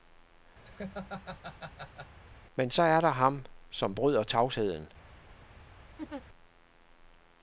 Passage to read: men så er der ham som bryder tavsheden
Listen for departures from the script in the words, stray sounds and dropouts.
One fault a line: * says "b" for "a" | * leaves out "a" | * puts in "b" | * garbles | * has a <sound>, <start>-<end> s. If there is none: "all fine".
* has a laugh, 0.6-2.2 s
* has a laugh, 6.0-6.2 s